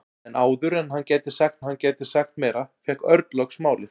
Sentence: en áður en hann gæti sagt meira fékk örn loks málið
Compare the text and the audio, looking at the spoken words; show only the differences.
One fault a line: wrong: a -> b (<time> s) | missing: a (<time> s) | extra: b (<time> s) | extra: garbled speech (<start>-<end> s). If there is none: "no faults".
extra: hann gæti sagt (1.7 s)